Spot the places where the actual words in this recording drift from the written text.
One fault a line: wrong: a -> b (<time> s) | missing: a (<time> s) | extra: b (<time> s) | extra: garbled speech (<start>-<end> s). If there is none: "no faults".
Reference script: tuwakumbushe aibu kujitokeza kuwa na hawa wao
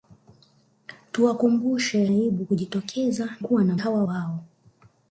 no faults